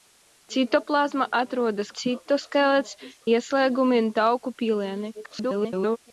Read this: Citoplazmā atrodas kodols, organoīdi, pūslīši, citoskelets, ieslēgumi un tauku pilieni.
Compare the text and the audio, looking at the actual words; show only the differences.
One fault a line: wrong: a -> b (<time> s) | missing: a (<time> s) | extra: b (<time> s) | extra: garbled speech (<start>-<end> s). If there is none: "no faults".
missing: kodols organoīdi pūslīši (1.9 s)
extra: garbled speech (5.2-6.0 s)